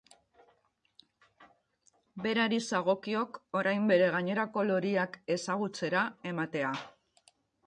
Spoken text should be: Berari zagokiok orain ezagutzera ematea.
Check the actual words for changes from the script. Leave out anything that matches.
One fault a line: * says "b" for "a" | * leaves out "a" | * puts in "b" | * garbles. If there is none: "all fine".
* puts in "bere gainerako loriak"